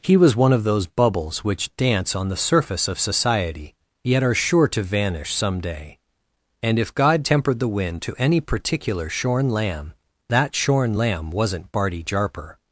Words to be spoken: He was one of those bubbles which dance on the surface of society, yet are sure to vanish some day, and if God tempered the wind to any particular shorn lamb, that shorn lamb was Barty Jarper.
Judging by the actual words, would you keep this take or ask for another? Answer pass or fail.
fail